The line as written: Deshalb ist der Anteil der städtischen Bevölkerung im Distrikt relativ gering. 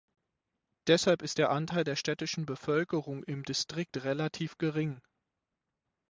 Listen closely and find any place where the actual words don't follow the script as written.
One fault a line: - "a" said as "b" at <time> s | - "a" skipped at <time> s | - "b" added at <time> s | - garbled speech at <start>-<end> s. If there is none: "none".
none